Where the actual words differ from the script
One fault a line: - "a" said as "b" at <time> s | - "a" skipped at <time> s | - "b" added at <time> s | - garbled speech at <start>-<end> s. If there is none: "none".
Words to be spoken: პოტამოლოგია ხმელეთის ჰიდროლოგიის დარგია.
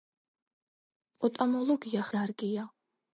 - "ხმელეთის ჰიდროლოგიის" skipped at 2.1 s